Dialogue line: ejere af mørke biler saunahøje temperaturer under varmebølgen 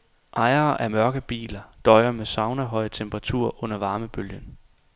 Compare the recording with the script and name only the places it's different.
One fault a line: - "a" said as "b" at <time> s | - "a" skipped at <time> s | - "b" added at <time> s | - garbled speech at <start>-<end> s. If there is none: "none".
- "døjer med" added at 1.8 s